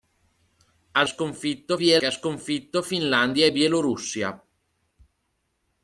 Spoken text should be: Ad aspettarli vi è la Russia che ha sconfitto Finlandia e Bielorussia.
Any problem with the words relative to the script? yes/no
yes